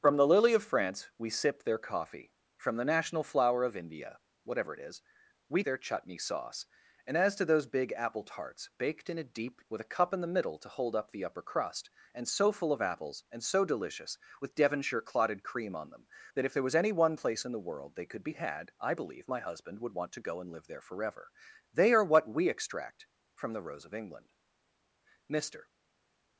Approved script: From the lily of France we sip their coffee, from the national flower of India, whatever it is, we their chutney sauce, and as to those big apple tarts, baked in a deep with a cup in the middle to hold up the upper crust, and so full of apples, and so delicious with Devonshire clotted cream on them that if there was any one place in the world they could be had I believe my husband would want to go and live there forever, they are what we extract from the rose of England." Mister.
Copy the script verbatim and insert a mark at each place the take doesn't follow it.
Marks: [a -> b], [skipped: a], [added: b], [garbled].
From the lily of France we sip their coffee, from the national flower of India, whatever it is, we their chutney sauce, and as to those big apple tarts, baked in a deep with a cup in the middle to hold up the upper crust, and so full of apples, and so delicious with Devonshire clotted cream on them that if there was any one place in the world they could be had I believe my husband would want to go and live there forever, they are what we extract from the rose of England." Mister.